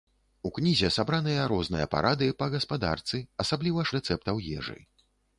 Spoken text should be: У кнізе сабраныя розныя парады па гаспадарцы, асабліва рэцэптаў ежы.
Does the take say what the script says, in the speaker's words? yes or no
yes